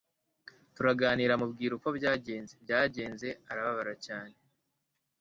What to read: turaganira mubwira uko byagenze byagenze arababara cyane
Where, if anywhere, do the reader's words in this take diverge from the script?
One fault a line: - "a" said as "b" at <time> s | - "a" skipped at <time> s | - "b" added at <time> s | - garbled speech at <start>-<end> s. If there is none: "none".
none